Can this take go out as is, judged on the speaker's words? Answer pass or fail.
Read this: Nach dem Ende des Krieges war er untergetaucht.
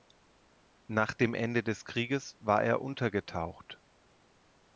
pass